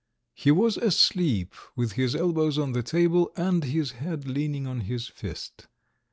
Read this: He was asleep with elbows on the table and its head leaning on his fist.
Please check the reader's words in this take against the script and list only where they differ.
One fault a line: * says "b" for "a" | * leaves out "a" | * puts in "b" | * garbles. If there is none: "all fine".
* puts in "his"
* says "his" for "its"